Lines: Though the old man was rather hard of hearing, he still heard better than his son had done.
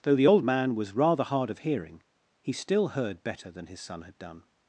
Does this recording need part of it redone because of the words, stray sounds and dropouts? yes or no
no